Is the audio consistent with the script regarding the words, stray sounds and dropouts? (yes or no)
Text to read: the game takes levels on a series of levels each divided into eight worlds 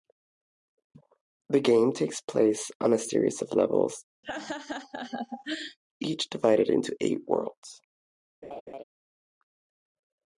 no